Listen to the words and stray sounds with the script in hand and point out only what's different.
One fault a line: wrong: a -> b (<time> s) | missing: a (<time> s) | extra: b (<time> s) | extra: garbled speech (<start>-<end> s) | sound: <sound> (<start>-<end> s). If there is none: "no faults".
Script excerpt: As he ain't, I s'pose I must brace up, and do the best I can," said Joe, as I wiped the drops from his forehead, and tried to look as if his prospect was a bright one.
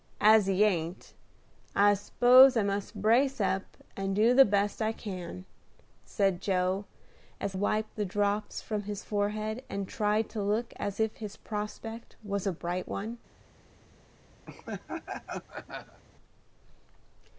missing: I (7.6 s)
sound: laugh (14.5-16.0 s)